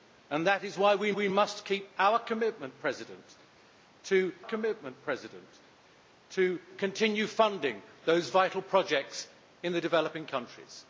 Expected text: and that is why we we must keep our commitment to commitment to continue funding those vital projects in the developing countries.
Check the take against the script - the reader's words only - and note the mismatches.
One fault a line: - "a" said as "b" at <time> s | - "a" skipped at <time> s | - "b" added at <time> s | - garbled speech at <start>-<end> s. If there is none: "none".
none